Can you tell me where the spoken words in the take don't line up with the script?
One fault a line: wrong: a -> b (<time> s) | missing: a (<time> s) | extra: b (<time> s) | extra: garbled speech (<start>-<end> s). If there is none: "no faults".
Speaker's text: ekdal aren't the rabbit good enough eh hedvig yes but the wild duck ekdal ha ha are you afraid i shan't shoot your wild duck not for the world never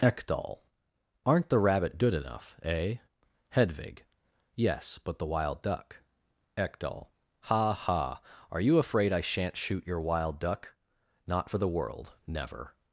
no faults